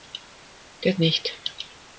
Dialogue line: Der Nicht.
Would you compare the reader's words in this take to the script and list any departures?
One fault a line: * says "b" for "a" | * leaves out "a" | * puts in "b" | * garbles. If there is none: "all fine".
all fine